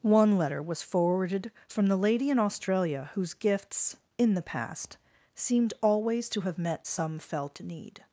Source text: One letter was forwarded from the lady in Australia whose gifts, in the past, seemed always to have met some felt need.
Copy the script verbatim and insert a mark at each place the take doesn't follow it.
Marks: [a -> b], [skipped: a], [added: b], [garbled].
One letter was forwarded from the lady in Australia whose gifts, in the past, seemed always to have met some felt need.